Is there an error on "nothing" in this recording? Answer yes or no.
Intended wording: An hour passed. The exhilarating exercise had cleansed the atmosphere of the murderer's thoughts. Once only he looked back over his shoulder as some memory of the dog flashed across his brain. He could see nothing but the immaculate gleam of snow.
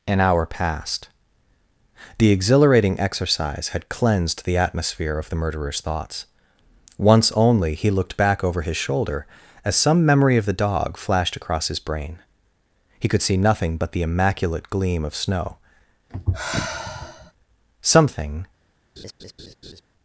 no